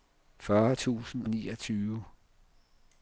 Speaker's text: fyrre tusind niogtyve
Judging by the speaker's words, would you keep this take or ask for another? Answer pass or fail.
pass